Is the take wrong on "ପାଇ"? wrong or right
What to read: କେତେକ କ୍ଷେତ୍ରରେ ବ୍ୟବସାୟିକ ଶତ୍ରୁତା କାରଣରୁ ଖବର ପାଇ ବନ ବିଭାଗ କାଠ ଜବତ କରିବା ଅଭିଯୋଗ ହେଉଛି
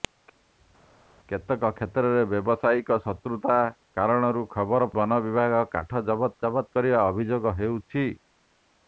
wrong